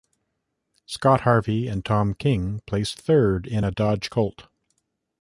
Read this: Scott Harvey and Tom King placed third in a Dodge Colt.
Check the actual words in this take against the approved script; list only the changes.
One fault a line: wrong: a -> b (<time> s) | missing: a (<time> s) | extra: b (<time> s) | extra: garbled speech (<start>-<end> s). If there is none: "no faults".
no faults